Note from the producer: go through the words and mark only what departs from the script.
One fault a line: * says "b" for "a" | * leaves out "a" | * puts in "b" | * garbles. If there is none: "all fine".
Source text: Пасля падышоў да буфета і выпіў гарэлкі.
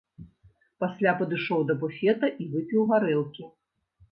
all fine